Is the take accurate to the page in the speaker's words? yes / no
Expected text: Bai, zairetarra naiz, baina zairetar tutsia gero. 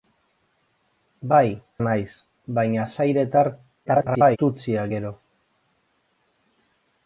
no